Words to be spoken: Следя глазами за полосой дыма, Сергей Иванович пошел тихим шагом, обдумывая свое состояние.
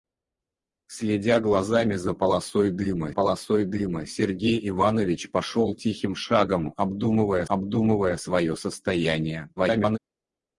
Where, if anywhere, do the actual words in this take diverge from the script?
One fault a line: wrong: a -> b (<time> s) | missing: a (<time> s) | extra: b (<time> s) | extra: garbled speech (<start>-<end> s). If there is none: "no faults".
extra: полосой дыма (3.1 s)
extra: обдумывая (7.5 s)
extra: garbled speech (9.6-10.0 s)